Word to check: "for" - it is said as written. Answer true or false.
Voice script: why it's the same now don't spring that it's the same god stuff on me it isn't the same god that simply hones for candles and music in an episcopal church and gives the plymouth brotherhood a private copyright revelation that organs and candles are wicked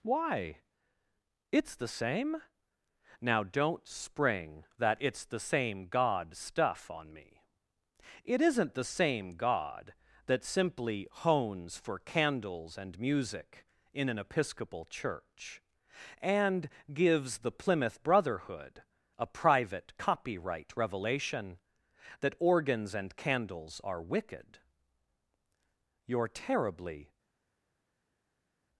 true